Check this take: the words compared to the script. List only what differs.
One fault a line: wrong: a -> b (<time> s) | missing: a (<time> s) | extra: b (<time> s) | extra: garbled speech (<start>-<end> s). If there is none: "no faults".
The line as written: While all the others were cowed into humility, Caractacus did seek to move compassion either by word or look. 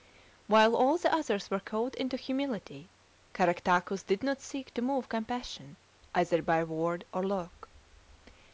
extra: not (4.2 s)